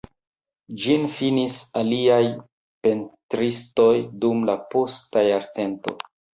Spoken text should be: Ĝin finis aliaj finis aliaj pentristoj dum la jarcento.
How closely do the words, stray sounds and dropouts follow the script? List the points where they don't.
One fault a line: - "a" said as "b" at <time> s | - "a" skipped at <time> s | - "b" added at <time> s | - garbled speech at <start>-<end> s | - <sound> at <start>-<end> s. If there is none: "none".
- "finis aliaj" skipped at 2.2 s
- "posta" added at 4.7 s